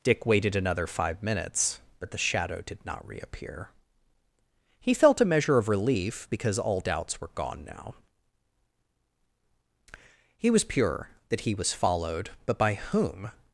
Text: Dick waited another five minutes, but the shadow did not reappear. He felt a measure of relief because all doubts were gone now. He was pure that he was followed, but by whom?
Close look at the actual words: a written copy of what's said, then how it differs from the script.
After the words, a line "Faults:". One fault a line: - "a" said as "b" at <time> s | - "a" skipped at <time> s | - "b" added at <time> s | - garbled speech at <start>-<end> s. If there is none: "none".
Dick waited another five minutes, but the shadow did not reappear. He felt a measure of relief because all doubts were gone now. He was pure that he was followed, but by whom?
Faults:
none